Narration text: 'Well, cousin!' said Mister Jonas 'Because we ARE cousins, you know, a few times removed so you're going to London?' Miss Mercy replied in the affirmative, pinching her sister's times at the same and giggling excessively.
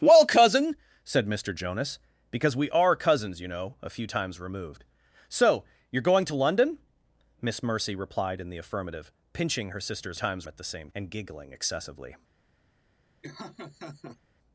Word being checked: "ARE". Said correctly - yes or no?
yes